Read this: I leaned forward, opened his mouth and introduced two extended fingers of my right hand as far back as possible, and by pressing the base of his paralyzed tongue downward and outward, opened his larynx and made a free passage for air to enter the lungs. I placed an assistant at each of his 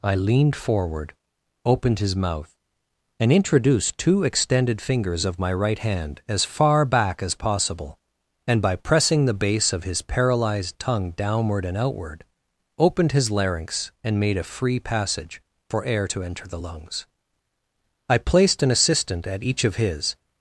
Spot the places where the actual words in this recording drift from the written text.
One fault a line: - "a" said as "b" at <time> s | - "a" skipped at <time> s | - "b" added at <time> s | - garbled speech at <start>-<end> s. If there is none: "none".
none